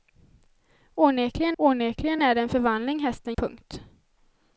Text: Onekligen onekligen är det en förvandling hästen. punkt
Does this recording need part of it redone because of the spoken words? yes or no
no